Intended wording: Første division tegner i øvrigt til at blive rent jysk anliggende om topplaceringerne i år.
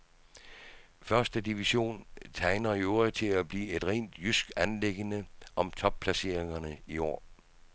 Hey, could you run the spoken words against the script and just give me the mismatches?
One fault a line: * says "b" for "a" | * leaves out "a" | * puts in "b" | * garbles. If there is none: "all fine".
* puts in "et"